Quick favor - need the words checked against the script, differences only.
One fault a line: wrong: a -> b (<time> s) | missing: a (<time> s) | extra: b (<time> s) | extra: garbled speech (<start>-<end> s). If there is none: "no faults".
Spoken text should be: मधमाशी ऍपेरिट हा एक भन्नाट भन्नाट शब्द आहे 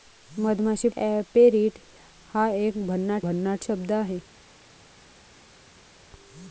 no faults